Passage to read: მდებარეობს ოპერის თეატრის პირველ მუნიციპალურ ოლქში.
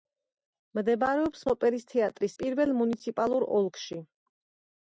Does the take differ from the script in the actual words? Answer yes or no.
no